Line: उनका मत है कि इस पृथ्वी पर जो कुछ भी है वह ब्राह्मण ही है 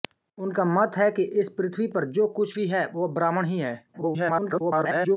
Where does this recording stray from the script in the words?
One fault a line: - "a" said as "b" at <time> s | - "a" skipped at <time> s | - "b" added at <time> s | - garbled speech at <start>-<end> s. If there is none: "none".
- garbled speech at 3.9-5.2 s